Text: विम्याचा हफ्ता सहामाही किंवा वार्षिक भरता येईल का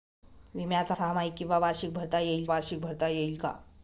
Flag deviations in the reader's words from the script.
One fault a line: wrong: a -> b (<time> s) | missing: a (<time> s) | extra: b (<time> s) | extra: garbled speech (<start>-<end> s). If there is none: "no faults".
missing: हफ्ता (0.9 s)
extra: वार्षिक भरता येईल (2.5 s)